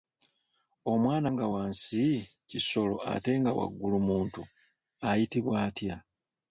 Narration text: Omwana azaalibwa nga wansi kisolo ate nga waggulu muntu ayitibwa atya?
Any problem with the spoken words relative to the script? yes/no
yes